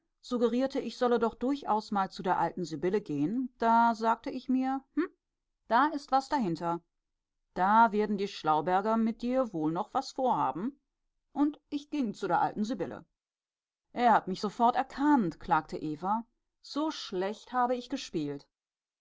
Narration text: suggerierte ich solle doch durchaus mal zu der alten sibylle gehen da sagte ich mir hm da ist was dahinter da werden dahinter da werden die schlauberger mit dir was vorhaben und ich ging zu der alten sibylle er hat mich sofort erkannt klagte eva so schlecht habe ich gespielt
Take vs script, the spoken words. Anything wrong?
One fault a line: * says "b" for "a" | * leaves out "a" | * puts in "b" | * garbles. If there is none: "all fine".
* leaves out "dahinter da werden"
* puts in "wohl noch"